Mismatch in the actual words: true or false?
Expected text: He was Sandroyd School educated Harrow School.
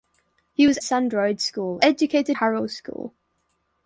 false